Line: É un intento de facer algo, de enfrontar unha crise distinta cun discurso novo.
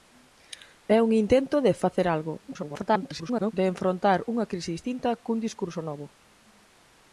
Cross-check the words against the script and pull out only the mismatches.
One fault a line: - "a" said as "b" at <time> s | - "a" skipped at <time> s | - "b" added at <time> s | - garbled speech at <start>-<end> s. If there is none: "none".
- garbled speech at 2.5-3.5 s